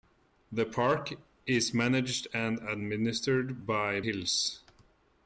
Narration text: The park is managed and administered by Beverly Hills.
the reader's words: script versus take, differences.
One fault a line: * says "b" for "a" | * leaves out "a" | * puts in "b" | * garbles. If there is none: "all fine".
* leaves out "Beverly"